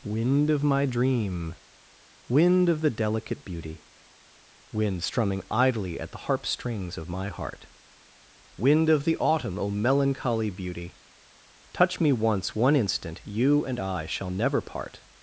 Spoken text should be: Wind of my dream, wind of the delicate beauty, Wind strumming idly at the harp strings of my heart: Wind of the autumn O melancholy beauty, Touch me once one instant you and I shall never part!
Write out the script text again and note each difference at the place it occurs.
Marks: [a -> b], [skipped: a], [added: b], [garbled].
Wind of my dream, wind of the delicate beauty, Wind strumming idly at the harp strings of my heart: Wind of the autumn O melancholy beauty, Touch me once one instant you and I shall never part!